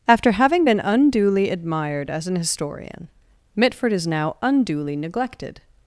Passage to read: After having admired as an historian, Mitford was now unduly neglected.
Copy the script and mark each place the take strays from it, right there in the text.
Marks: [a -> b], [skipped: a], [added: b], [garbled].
After having [added: been unduly] admired as an historian, Mitford [was -> is] now unduly neglected.